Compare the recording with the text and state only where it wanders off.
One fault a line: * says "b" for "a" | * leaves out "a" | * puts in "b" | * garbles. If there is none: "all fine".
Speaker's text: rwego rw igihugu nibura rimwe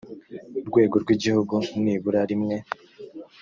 all fine